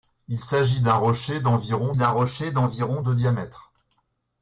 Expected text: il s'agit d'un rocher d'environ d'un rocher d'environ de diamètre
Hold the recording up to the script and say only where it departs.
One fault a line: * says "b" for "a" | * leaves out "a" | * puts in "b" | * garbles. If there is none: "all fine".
all fine